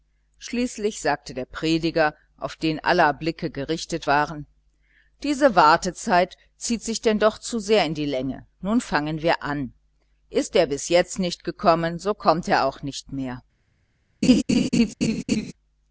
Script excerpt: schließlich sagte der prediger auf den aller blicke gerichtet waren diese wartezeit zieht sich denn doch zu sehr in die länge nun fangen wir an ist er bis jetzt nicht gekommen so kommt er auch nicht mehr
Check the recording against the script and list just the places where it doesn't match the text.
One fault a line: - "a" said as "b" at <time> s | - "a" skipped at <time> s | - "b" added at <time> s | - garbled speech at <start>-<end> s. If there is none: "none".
none